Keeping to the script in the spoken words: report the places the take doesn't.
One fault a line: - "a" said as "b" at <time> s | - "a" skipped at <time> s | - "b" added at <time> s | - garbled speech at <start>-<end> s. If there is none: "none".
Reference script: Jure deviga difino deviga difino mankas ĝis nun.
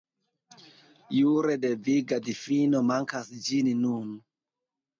- "deviga difino" skipped at 2.8 s